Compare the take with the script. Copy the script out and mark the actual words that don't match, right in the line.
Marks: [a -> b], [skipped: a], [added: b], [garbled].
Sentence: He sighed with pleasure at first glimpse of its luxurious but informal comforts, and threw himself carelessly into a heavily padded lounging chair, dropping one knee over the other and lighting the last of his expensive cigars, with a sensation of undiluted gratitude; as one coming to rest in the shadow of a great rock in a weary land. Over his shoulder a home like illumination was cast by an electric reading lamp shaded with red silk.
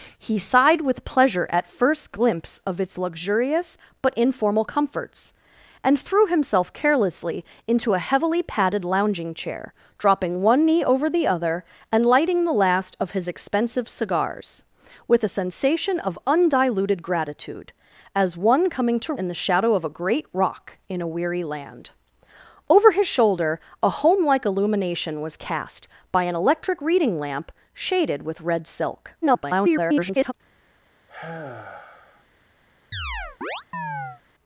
He sighed with pleasure at first glimpse of its luxurious but informal comforts, and threw himself carelessly into a heavily padded lounging chair, dropping one knee over the other and lighting the last of his expensive cigars, with a sensation of undiluted gratitude; as one coming to [skipped: rest] in the shadow of a great rock in a weary land. Over his shoulder a home like illumination was cast by an electric reading lamp shaded with red silk. [garbled]